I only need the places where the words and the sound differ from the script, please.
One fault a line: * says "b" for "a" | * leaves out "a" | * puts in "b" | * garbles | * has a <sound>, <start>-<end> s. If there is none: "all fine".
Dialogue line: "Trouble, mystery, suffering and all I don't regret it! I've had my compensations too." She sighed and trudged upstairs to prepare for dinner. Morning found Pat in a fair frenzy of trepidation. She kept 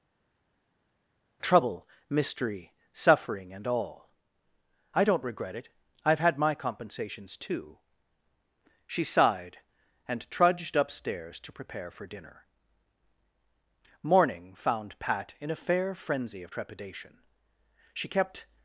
all fine